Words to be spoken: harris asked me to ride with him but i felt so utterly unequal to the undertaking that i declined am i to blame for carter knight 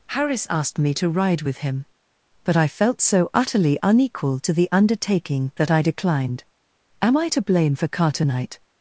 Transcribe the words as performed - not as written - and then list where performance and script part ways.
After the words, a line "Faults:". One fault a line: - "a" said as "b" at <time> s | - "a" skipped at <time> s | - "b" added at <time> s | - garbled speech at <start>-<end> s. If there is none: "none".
harris asked me to ride with him but i felt so utterly unequal to the undertaking that i declined am i to blame for carter knight
Faults:
none